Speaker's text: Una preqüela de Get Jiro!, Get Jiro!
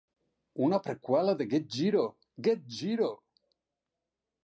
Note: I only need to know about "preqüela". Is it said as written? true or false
true